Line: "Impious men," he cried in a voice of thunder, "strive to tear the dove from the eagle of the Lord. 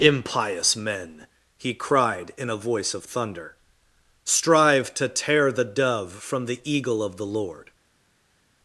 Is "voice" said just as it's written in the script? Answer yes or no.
yes